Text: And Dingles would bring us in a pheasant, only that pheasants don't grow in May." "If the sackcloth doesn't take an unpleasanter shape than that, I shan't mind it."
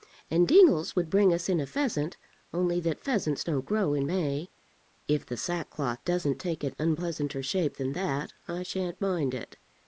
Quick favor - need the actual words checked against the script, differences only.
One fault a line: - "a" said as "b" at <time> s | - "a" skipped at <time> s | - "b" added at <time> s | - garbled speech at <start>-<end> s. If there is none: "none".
none